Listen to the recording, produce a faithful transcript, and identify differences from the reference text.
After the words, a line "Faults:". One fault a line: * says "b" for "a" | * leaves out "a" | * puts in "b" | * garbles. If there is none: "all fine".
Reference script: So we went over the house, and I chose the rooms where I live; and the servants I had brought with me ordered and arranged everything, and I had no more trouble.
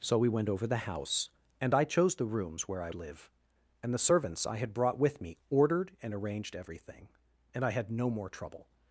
So we went over the house, and I chose the rooms where I live; and the servants I had brought with me ordered and arranged everything, and I had no more trouble.
Faults:
all fine